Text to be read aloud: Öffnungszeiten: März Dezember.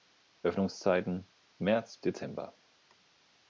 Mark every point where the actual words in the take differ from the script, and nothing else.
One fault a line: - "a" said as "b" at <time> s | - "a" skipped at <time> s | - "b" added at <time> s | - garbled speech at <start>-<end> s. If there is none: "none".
none